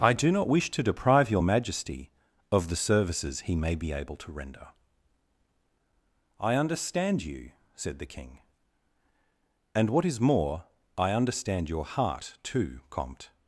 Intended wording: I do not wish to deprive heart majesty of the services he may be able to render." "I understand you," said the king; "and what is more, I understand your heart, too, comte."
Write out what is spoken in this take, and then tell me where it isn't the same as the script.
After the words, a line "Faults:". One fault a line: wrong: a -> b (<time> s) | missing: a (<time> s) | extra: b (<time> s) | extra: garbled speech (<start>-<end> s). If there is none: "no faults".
I do not wish to deprive your majesty of the services he may be able to render." "I understand you," said the king; "and what is more, I understand your heart, too, comte."
Faults:
wrong: heart -> your (1.3 s)